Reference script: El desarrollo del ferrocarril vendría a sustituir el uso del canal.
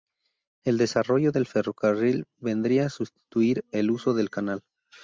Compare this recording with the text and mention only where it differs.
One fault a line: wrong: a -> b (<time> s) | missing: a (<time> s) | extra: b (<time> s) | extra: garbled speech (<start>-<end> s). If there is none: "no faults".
no faults